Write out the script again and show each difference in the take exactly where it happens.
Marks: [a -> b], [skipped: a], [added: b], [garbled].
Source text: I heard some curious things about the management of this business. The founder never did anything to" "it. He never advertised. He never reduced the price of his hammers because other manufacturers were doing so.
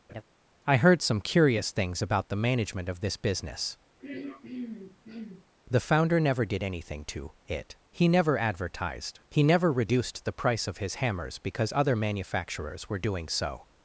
I heard some curious things about the management of this business. The founder never did anything to" "it. He never advertised. He never reduced the price of his hammers because other manufacturers were doing so.